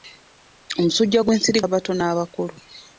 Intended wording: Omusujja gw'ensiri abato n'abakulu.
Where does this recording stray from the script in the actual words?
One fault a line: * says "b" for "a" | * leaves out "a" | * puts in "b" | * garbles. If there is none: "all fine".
all fine